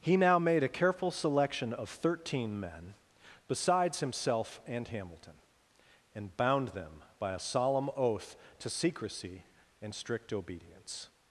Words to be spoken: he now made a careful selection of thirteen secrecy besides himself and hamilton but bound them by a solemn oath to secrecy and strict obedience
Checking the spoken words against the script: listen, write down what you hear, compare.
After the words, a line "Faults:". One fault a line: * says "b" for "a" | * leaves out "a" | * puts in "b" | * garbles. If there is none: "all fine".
he now made a careful selection of thirteen men besides himself and hamilton and bound them by a solemn oath to secrecy and strict obedience
Faults:
* says "men" for "secrecy"
* says "and" for "but"